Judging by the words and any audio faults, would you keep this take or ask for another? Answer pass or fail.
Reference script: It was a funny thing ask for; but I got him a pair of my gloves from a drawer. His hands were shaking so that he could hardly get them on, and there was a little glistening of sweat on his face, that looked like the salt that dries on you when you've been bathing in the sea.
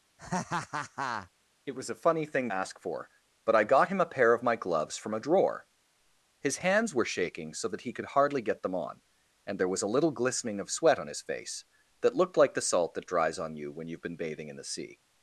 fail